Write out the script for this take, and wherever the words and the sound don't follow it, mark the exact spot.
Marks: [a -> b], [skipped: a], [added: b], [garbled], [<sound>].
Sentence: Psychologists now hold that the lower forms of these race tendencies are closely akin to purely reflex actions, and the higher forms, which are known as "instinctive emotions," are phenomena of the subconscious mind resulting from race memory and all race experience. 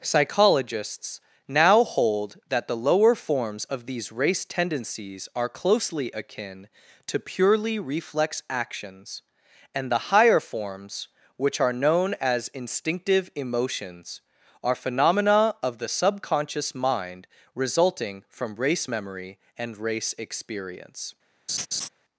Psychologists now hold that the lower forms of these race tendencies are closely akin to purely reflex actions, and the higher forms, which are known as "instinctive emotions," are phenomena of the subconscious mind resulting from race memory and [skipped: all] race experience. [laugh]